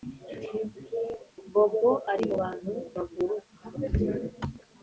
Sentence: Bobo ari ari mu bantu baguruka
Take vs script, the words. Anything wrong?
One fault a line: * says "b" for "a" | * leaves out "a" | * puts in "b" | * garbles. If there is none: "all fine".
* leaves out "ari"